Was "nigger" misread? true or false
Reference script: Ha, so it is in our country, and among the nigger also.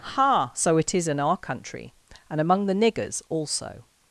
true